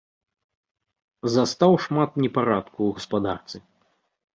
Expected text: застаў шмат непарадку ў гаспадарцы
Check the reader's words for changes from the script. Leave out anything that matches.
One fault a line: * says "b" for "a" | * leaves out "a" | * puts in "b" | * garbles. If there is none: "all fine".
all fine